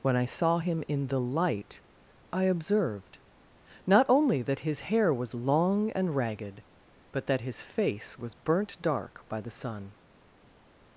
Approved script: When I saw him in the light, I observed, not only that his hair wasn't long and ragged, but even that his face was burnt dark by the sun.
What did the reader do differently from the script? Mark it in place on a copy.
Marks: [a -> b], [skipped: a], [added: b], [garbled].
When I saw him in the light, I observed, not only that his hair [wasn't -> was] long and ragged, but [skipped: even] that his face was burnt dark by the sun.